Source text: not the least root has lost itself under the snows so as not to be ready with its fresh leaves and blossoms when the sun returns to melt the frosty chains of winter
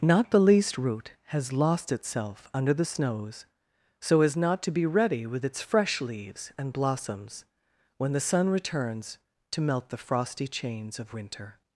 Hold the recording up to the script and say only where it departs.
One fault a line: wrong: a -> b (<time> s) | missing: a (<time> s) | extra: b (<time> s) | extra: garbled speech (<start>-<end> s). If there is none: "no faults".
no faults